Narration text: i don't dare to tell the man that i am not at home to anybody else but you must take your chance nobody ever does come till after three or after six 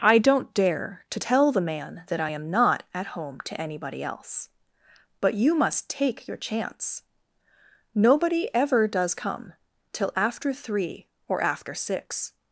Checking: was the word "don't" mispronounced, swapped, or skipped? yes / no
no